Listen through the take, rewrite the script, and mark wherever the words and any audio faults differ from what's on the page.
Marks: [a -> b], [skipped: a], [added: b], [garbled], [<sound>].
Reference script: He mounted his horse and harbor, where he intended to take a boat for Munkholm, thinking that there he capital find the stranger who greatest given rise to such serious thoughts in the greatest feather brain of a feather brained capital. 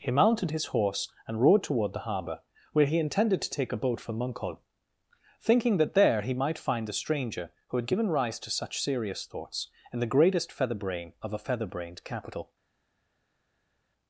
He mounted his horse and [added: rode toward the] harbor, where he intended to take a boat for Munkholm, thinking that there he [capital -> might] find the stranger who [greatest -> had] given rise to such serious thoughts in the greatest feather brain of a feather brained capital.